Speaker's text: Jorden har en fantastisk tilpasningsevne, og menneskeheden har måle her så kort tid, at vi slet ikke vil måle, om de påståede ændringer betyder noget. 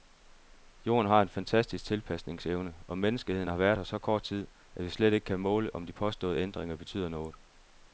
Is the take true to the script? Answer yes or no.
no